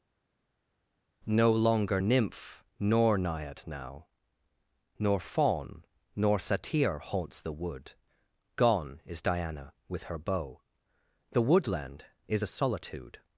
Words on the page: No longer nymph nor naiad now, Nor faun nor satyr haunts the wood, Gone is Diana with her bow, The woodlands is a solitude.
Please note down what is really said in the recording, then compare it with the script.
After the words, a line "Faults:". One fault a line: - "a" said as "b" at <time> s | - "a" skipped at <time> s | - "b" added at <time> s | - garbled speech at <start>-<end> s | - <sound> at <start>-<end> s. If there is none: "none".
No longer nymph nor naiad now, Nor faun nor satyr haunts the wood, Gone is Diana with her bow, The woodland is a solitude.
Faults:
- "woodlands" said as "woodland" at 11.4 s